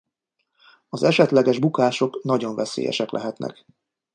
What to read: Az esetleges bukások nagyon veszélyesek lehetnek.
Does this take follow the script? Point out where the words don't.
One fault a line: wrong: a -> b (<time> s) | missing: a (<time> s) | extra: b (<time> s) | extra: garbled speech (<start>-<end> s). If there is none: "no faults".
no faults